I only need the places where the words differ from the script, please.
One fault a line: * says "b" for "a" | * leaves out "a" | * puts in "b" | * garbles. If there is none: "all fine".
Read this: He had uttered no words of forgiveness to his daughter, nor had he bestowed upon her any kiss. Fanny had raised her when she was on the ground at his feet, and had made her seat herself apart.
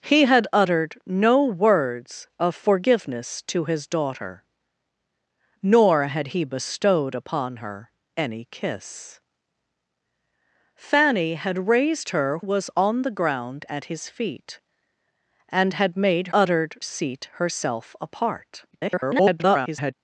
* leaves out "when she"
* says "uttered" for "her"
* garbles